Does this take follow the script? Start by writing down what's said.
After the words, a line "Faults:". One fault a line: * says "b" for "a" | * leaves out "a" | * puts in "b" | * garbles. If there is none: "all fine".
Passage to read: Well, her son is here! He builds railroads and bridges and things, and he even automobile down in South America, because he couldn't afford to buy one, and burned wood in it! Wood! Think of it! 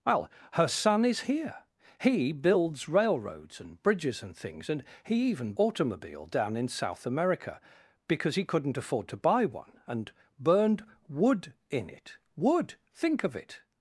Well, her son is here! He builds railroads and bridges and things, and he even automobile down in South America, because he couldn't afford to buy one, and burned wood in it! Wood! Think of it!
Faults:
all fine